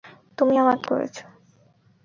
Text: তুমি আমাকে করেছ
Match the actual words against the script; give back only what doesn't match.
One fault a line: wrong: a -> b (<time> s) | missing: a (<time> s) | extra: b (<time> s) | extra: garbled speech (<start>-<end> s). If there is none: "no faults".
no faults